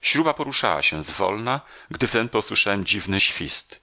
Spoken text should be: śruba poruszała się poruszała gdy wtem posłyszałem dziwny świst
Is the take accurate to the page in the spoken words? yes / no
no